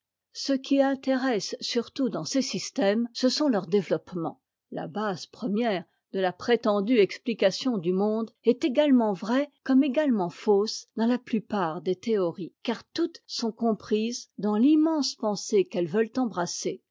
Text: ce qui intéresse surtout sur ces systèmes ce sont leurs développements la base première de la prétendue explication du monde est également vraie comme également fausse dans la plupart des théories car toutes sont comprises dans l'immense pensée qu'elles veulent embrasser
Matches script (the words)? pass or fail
fail